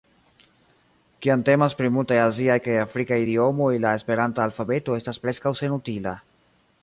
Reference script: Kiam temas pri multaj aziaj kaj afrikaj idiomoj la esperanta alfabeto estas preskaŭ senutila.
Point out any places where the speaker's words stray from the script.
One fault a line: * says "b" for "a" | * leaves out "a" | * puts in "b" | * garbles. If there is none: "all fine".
all fine